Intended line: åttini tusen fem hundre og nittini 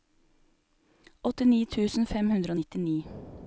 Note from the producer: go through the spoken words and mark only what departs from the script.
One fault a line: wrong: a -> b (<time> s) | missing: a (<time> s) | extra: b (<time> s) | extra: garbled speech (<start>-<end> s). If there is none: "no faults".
no faults